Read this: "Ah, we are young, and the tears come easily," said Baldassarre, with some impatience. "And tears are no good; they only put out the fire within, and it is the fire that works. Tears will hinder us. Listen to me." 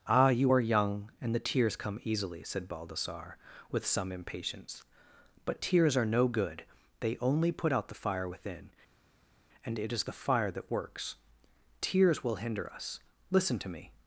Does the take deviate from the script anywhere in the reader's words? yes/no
yes